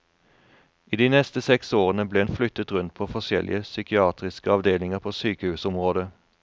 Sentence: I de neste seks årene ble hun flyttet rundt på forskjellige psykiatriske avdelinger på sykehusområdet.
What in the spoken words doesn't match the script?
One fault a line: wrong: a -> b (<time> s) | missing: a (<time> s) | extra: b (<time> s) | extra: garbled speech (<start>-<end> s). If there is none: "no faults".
no faults